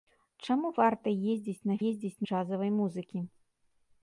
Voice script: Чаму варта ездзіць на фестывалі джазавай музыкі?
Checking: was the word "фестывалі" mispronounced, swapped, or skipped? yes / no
yes